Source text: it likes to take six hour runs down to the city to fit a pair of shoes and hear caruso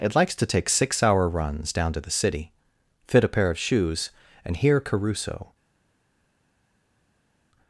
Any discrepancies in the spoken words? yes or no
yes